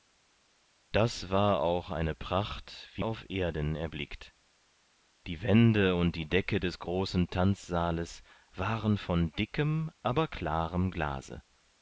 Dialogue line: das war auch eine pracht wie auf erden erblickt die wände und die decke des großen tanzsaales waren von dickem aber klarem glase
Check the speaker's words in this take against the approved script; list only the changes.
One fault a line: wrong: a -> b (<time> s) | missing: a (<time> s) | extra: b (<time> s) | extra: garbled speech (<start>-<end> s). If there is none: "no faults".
no faults